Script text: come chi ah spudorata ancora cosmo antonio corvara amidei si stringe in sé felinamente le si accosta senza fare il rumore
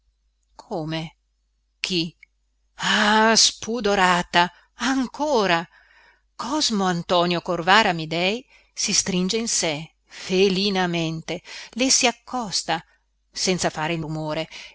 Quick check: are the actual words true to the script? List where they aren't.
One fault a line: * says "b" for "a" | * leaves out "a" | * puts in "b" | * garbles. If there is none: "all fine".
all fine